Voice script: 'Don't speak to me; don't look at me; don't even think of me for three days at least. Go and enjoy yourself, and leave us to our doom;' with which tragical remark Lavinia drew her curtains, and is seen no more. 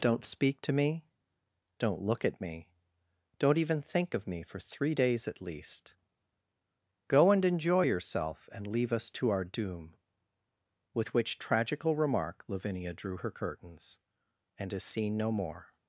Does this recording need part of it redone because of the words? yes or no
no